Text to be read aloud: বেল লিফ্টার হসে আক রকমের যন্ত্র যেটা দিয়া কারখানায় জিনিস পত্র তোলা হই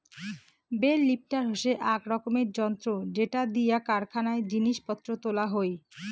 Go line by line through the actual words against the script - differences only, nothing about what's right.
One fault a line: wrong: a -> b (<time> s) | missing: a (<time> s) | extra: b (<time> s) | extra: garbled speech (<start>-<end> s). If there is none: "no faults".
no faults